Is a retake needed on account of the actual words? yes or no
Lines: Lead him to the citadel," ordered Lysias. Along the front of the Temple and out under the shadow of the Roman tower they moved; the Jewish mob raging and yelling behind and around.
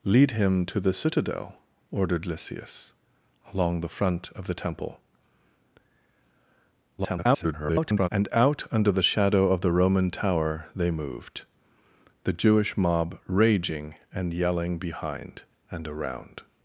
yes